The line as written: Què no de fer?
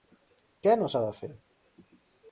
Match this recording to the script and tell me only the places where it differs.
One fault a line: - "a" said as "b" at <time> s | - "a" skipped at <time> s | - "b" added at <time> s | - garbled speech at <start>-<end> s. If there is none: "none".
- "s'ha" added at 0.9 s